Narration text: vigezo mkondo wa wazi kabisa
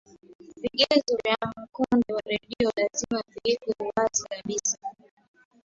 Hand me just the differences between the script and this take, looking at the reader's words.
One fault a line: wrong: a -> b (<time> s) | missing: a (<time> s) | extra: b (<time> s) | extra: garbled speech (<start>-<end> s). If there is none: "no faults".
extra: vya (1.2 s)
extra: redio lazima viwekwe (2.3 s)